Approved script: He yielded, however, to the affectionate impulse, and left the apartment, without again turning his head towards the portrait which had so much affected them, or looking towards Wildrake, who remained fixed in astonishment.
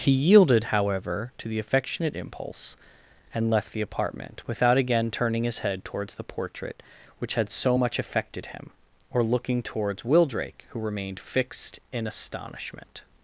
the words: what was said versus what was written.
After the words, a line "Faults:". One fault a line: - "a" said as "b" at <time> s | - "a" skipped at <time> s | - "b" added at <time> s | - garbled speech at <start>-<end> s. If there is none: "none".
He yielded, however, to the affectionate impulse, and left the apartment, without again turning his head towards the portrait which had so much affected him, or looking towards Wildrake, who remained fixed in astonishment.
Faults:
- "them" said as "him" at 8.5 s